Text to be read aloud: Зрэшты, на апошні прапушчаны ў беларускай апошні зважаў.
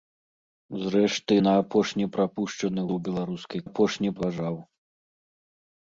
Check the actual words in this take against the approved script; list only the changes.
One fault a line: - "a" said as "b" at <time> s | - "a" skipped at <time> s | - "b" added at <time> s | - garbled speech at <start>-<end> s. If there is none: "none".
none